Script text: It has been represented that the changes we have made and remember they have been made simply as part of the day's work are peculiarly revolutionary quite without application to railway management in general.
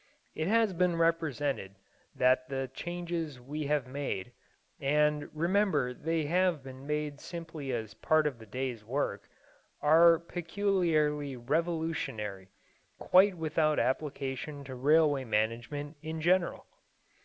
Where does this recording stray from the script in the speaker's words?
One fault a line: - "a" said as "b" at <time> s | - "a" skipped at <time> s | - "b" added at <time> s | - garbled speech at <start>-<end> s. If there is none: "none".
none